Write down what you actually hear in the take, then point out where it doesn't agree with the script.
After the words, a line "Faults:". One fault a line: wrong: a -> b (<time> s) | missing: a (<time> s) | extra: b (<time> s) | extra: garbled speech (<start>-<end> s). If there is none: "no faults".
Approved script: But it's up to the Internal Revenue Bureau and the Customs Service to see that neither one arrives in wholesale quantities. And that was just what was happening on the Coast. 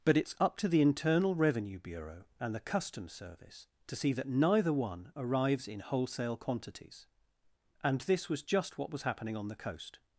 But it's up to the Internal Revenue Bureau and the Customs Service to see that neither one arrives in wholesale quantities. And this was just what was happening on the Coast.
Faults:
wrong: that -> this (8.0 s)